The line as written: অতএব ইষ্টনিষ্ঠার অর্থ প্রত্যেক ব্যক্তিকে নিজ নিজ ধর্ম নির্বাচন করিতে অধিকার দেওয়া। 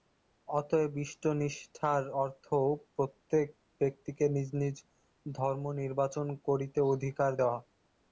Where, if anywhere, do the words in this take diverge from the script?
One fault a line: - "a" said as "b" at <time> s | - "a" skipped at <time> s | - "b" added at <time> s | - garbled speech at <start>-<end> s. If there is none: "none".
none